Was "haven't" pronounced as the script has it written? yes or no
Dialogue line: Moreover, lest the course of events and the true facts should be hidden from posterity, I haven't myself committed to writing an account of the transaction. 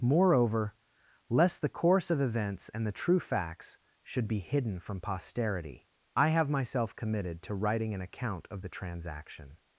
no